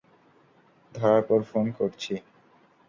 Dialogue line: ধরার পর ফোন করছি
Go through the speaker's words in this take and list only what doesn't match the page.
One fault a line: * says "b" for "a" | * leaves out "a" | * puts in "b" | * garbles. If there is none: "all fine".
all fine